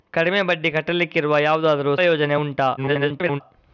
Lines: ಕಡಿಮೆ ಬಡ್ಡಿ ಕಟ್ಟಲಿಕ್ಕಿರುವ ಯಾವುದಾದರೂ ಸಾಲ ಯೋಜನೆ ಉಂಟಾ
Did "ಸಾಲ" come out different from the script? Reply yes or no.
yes